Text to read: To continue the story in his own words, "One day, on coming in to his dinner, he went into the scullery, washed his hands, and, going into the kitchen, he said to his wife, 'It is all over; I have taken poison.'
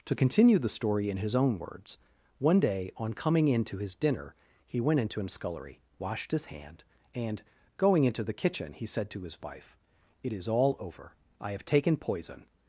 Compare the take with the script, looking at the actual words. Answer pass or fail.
fail